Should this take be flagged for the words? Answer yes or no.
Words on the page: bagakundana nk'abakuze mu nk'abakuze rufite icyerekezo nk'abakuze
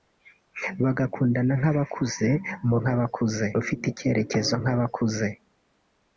no